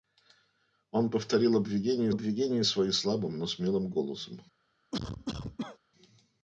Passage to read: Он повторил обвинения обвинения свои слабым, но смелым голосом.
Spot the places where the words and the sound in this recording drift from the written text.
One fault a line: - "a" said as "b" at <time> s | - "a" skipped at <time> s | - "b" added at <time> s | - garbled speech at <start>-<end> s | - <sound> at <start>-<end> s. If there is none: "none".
- cough at 4.9-5.8 s